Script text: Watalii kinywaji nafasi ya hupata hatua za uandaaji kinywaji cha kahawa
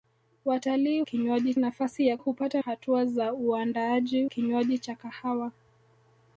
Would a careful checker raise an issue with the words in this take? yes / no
no